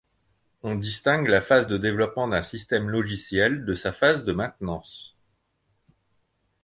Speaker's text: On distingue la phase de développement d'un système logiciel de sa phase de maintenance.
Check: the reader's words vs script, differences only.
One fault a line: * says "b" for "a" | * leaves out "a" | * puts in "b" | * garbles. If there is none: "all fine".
all fine